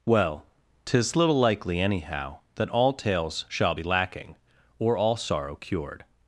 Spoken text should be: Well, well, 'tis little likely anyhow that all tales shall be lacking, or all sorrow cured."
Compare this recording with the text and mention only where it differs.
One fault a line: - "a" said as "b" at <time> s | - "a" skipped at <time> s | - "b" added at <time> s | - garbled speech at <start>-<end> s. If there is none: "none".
- "well" skipped at 0.5 s